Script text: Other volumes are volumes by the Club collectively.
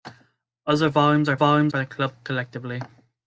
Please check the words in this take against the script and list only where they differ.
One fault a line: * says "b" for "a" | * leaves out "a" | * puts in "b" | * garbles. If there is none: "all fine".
all fine